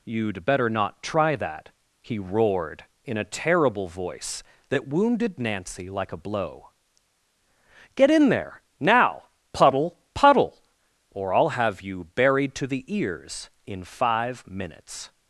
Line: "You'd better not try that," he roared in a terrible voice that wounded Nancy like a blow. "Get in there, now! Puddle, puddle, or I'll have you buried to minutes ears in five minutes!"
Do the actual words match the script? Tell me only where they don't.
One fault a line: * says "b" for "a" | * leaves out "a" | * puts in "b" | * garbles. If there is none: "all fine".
* says "the" for "minutes"